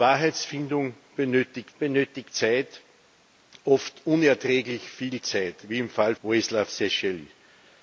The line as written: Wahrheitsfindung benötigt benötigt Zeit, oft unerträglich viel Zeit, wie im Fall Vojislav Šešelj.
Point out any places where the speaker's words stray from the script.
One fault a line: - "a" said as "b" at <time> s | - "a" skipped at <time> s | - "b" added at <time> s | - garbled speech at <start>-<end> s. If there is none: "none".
none